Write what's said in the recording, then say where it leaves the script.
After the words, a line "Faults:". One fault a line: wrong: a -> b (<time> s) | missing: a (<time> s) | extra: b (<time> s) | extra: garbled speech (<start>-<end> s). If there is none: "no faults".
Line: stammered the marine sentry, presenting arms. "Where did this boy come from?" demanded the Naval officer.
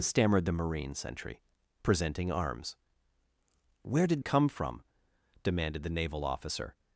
stammered the marine sentry, presenting arms. "Where did come from?" demanded the Naval officer.
Faults:
missing: this boy (4.2 s)